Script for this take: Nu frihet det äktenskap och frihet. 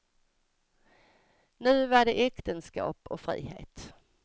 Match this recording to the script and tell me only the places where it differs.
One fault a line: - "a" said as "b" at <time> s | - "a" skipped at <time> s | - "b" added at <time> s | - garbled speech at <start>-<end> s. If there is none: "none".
- "frihet" said as "var" at 1.9 s